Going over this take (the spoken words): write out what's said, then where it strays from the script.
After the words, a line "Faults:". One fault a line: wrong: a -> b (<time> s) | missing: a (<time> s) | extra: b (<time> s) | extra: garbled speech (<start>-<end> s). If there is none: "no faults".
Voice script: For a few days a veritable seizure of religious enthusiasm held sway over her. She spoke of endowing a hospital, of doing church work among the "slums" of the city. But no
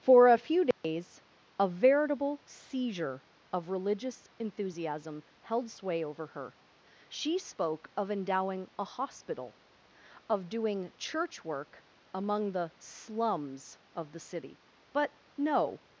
For a few days a veritable seizure of religious enthusiasm held sway over her. She spoke of endowing a hospital, of doing church work among the "slums" of the city. But no
Faults:
no faults